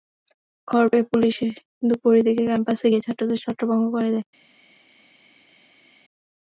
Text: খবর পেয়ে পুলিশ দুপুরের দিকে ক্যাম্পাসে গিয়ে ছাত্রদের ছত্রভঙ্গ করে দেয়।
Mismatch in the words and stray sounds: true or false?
false